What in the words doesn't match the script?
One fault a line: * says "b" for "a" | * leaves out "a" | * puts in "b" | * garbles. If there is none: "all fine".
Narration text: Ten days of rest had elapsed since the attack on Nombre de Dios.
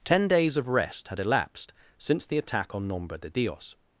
all fine